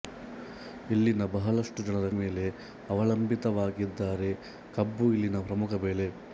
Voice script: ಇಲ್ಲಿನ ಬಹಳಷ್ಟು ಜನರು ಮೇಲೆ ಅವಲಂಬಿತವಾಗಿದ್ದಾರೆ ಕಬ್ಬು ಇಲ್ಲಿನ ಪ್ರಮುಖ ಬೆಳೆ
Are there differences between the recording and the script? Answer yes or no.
no